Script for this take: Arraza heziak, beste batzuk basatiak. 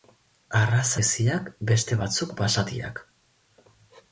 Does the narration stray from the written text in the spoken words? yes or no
no